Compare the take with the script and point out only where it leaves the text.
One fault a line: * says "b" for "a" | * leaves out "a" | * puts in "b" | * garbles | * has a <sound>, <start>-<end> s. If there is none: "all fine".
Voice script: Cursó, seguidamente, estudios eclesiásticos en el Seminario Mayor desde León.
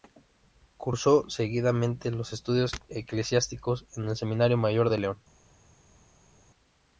* puts in "los"
* says "de" for "desde"